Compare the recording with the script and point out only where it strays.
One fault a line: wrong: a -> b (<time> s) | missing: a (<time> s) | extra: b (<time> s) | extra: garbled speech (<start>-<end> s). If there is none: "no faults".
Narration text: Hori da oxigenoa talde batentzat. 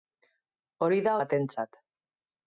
missing: oxigenoa talde (1.1 s)